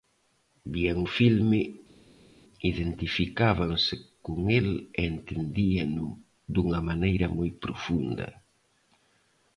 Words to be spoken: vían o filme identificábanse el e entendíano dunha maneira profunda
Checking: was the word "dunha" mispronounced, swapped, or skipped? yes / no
no